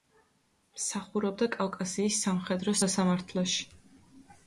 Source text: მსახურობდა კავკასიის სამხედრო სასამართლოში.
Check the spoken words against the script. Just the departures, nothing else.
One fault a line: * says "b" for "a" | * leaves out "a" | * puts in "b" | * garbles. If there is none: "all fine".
all fine